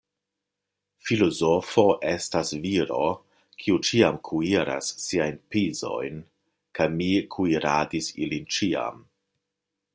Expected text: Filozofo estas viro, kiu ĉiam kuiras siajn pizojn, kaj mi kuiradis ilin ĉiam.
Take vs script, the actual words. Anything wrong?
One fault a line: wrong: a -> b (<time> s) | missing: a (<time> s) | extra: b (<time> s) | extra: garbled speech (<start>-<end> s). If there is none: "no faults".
no faults